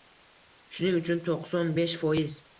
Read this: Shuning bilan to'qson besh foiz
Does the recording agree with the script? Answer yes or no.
no